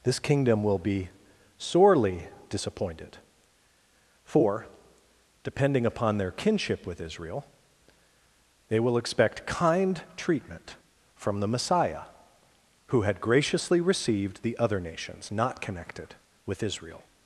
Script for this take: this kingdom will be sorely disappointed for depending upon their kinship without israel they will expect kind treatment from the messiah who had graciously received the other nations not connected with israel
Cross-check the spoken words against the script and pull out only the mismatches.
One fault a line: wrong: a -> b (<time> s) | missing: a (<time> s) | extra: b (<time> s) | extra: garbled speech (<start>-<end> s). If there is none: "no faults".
wrong: without -> with (6.8 s)